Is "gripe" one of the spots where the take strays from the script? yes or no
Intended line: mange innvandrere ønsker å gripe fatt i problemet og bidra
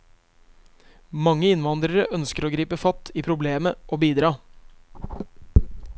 no